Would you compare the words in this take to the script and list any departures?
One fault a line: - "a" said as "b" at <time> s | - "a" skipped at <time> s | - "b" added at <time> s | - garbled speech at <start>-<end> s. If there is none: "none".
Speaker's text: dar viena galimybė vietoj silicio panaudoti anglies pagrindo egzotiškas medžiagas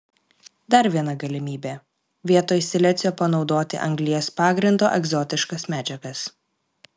none